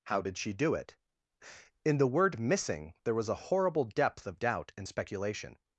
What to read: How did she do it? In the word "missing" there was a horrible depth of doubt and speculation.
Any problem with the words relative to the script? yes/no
no